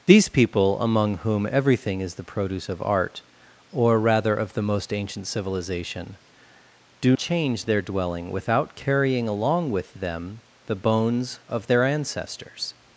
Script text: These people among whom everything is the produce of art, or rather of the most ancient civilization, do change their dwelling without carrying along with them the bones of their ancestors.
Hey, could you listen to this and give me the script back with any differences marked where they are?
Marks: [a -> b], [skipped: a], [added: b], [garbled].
These people among whom everything is the produce of art, or rather of the most ancient civilization, do change their dwelling without carrying along with them the bones of their ancestors.